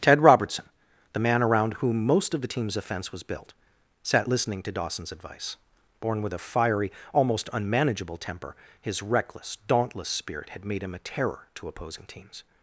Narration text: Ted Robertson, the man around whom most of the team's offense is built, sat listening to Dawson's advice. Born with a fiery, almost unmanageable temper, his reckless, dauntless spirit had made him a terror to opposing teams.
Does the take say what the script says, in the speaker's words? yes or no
no